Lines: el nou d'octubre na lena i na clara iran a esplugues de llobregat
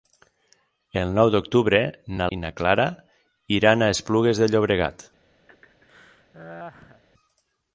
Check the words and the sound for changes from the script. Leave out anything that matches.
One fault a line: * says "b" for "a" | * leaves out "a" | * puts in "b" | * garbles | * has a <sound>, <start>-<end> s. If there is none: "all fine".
* leaves out "lena"
* has a laugh, 5.5-7.0 s